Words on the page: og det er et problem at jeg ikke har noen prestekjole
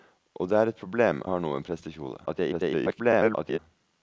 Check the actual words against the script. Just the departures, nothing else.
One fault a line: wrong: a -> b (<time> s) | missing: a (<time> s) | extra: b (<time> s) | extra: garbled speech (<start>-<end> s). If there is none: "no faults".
missing: at jeg ikke (1.2 s)
extra: garbled speech (2.3-3.6 s)